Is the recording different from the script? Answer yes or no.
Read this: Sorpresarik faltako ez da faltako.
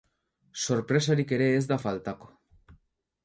yes